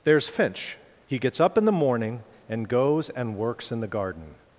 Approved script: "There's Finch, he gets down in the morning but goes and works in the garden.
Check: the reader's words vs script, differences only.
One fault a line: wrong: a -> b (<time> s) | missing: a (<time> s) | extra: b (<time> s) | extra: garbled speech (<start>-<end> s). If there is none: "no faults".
wrong: down -> up (1.4 s)
wrong: but -> and (2.5 s)